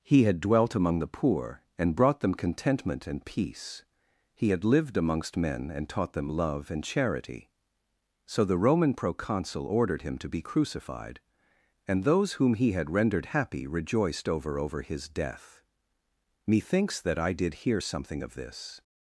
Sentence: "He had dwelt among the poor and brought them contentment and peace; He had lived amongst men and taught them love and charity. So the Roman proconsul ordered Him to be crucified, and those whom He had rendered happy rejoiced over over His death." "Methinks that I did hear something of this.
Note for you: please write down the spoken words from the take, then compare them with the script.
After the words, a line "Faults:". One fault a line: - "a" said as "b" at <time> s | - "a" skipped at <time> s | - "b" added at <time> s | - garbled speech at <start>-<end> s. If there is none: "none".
"He had dwelt among the poor and brought them contentment and peace; He had lived amongst men and taught them love and charity. So the Roman proconsul ordered Him to be crucified, and those whom He had rendered happy rejoiced over over His death." "Methinks that I did hear something of this.
Faults:
none